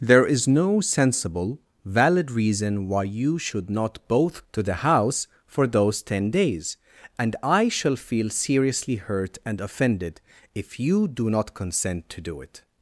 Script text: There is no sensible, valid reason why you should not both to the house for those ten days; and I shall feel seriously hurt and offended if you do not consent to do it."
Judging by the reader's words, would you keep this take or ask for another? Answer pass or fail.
pass